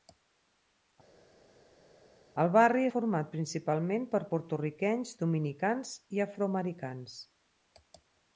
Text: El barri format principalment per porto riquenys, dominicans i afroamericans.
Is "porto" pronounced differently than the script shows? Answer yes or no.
no